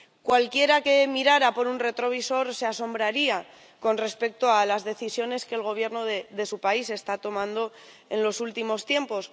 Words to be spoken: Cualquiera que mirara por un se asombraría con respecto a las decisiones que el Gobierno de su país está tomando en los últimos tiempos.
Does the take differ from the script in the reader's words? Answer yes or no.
yes